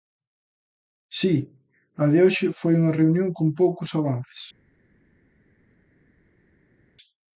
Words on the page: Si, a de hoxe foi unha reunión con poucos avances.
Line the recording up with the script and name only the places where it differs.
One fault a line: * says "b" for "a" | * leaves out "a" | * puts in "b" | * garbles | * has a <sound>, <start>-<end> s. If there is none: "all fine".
all fine